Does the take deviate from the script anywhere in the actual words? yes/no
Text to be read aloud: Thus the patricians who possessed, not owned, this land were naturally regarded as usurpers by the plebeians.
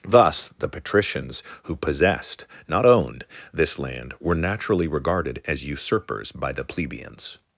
no